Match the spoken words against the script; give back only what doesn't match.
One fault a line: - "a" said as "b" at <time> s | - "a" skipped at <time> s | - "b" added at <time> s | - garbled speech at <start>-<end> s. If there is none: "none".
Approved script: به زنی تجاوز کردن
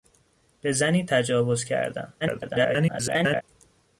- garbled speech at 2.2-3.4 s